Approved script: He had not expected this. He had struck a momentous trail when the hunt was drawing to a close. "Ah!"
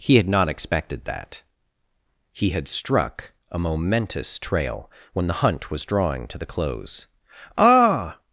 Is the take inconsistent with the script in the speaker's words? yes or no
yes